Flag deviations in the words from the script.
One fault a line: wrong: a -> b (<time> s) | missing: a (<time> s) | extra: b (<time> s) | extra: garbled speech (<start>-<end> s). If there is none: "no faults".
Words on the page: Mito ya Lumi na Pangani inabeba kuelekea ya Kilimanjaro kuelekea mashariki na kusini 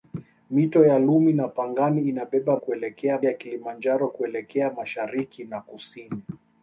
no faults